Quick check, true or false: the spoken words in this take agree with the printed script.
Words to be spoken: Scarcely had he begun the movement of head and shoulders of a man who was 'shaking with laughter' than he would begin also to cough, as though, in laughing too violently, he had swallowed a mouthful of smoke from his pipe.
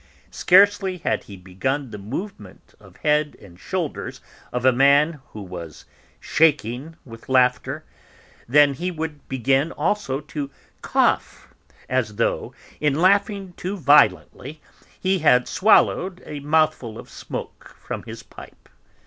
true